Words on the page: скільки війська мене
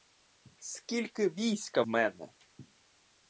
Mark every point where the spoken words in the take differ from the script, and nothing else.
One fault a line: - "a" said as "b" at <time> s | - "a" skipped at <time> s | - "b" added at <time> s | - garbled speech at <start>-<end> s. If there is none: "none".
none